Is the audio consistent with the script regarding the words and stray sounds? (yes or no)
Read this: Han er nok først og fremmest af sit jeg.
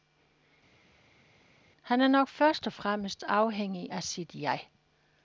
no